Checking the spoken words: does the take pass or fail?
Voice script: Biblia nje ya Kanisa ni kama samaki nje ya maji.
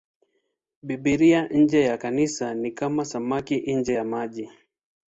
pass